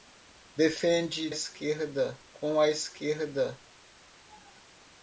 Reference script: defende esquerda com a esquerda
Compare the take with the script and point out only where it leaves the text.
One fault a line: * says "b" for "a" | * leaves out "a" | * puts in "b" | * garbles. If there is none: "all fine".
all fine